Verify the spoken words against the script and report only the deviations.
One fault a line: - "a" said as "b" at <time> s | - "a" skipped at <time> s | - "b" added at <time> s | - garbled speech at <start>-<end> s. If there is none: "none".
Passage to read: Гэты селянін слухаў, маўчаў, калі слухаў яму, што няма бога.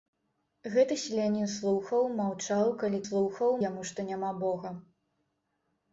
none